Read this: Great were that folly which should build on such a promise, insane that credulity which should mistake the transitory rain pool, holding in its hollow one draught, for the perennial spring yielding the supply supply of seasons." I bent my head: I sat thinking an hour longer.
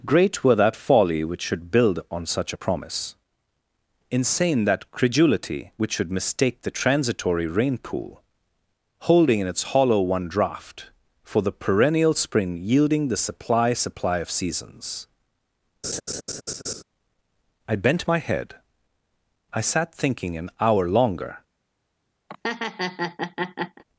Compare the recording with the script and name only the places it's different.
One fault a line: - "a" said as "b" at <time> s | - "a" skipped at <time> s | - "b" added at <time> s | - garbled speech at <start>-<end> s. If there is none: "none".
none